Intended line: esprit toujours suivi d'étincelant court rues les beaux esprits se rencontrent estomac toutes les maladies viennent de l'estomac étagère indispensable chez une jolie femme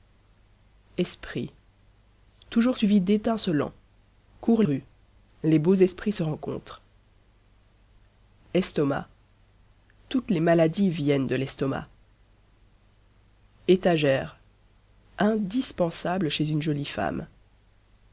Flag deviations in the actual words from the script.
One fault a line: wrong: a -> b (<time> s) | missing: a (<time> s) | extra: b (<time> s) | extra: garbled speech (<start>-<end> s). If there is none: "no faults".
no faults